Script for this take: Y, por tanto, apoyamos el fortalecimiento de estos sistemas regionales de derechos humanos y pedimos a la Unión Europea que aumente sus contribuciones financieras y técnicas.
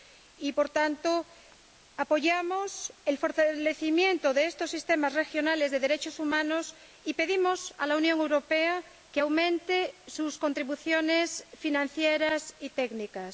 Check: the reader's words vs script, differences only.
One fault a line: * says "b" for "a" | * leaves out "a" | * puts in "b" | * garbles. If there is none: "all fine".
all fine